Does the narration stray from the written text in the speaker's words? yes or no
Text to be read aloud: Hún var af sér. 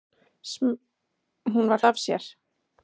no